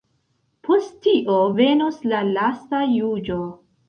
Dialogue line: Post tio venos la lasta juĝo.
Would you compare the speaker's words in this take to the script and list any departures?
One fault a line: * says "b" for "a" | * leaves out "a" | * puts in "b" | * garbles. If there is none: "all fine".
all fine